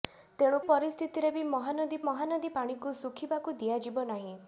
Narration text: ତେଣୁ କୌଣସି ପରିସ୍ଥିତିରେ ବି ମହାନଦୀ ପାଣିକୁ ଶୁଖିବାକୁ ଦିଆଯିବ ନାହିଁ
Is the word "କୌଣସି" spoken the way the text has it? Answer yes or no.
no